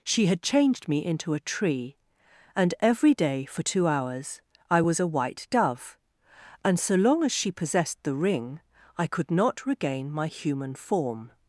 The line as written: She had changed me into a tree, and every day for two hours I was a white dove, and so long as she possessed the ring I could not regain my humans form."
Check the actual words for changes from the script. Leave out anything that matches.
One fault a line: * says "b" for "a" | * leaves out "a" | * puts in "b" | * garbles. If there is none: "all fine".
* says "human" for "humans"